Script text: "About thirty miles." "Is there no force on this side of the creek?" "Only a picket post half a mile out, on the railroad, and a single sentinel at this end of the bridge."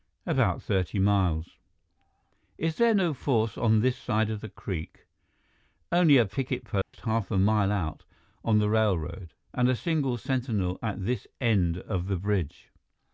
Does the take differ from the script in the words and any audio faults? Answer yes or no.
yes